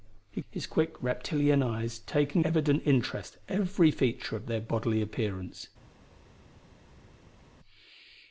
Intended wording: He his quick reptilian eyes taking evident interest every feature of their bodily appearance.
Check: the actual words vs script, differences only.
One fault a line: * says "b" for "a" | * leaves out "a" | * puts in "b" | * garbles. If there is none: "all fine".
all fine